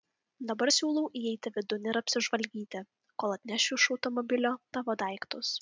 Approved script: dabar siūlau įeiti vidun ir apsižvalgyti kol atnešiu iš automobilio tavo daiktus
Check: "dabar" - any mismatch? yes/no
no